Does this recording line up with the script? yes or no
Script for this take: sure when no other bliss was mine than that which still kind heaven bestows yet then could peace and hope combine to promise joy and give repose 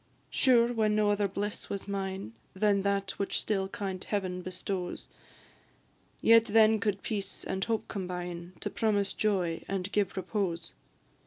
yes